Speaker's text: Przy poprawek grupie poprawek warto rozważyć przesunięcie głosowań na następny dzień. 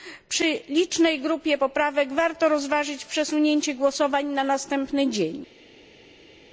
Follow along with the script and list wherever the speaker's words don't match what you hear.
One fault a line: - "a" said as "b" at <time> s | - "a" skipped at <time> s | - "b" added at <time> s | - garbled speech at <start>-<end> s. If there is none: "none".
- "poprawek" said as "licznej" at 0.7 s